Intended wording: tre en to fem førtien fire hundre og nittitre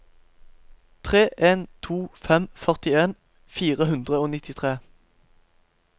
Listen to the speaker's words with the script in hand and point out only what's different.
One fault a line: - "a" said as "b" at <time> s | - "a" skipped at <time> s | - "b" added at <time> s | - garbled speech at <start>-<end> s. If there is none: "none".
none